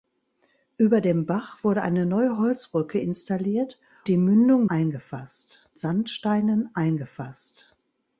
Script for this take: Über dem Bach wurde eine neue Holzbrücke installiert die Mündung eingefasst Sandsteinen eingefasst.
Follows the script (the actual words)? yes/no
yes